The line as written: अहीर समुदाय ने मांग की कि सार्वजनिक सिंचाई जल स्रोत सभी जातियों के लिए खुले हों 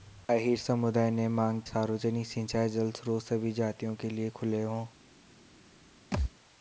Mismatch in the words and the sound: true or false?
true